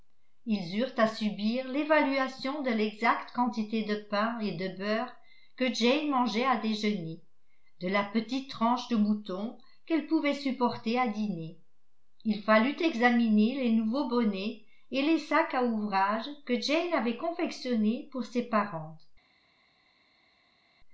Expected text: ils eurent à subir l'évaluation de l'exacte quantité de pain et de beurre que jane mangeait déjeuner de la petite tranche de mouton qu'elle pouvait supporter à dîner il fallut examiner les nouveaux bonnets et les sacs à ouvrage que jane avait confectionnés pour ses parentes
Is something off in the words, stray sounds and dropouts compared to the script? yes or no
yes